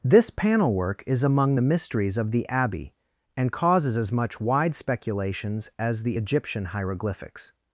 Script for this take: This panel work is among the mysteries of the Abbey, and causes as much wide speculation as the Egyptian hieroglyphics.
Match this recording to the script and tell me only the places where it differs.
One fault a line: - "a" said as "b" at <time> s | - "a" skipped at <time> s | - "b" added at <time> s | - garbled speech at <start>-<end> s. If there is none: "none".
- "speculation" said as "speculations" at 4.8 s